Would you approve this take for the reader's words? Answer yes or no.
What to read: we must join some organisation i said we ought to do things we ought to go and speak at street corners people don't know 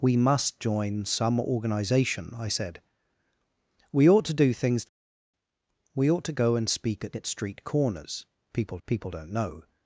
no